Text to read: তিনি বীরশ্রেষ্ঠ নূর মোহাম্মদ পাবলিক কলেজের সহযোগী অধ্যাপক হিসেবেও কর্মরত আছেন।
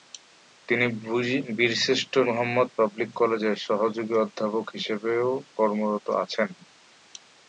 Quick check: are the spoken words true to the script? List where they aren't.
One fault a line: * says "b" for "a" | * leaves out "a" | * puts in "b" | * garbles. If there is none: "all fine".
* leaves out "নূর"